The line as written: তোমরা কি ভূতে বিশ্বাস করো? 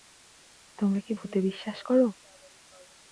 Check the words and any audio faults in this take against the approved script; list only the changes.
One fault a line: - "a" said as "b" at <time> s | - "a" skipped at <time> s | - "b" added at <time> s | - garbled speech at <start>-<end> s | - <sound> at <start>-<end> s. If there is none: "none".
none